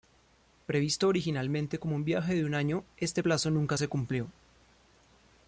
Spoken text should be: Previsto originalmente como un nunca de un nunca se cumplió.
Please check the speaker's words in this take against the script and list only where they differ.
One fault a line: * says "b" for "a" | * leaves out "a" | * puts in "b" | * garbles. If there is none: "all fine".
* says "viaje" for "nunca"
* puts in "año este plazo"